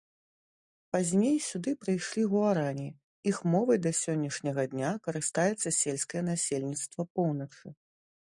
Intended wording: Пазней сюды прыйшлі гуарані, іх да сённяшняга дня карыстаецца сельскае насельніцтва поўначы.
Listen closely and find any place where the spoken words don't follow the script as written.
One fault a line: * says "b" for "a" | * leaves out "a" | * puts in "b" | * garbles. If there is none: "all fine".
* puts in "мовай"